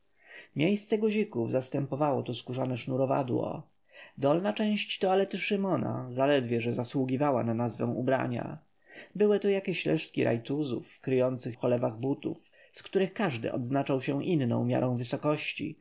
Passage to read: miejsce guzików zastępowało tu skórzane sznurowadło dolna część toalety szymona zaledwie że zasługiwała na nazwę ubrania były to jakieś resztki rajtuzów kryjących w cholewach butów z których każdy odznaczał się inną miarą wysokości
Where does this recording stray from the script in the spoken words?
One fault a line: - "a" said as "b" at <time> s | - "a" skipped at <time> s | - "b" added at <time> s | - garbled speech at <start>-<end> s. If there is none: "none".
none